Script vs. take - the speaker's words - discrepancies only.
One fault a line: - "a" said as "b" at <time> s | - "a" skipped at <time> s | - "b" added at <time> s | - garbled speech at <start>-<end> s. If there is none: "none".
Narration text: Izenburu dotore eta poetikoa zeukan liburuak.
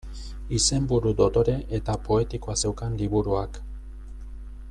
none